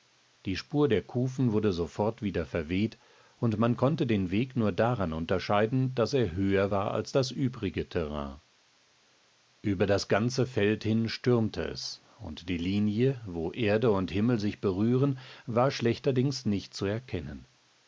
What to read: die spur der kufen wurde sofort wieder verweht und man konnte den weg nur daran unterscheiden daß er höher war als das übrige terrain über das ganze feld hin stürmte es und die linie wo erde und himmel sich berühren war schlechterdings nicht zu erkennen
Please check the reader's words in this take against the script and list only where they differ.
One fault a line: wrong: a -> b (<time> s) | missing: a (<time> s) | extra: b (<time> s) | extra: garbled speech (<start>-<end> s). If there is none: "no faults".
no faults